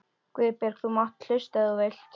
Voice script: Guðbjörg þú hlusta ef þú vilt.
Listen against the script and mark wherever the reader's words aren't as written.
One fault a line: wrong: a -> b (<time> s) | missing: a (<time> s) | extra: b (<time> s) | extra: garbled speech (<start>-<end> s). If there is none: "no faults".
extra: mátt (1.0 s)